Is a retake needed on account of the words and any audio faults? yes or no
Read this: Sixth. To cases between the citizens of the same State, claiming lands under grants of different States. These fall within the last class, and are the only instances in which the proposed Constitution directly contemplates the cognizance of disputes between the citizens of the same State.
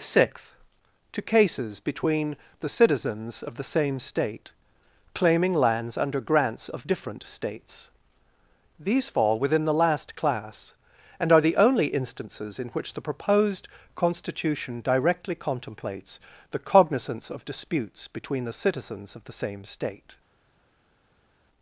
no